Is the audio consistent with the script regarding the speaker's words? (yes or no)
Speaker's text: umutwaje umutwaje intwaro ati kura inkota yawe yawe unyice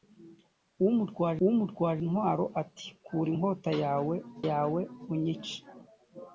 yes